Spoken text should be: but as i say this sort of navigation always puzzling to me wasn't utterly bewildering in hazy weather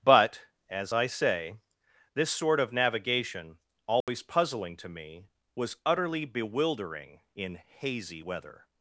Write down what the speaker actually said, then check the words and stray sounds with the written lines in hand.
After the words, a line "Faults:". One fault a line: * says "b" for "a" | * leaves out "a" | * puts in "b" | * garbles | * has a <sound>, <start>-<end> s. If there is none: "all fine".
but as i say this sort of navigation always puzzling to me was utterly bewildering in hazy weather
Faults:
* has a dropout, 4.0-4.1 s
* says "was" for "wasn't"